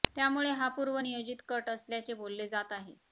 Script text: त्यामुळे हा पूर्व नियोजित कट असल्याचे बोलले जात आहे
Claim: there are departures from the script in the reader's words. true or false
false